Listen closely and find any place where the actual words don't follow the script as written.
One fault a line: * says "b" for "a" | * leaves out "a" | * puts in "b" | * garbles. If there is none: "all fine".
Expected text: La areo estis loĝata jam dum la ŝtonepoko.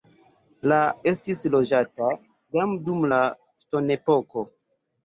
* leaves out "areo"